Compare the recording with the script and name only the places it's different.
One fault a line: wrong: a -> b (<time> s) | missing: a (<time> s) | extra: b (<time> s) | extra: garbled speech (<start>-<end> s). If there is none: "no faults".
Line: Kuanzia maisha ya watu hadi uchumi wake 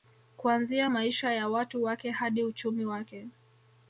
extra: wake (1.8 s)